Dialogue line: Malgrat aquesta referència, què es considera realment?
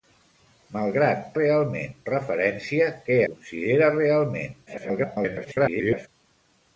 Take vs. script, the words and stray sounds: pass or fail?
fail